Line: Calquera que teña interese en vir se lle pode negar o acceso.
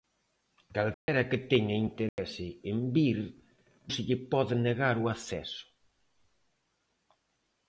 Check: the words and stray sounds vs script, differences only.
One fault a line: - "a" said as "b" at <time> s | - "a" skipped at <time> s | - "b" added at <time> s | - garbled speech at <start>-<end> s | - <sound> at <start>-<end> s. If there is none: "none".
- dropout at 0.9-1.1 s
- dropout at 2.1-2.2 s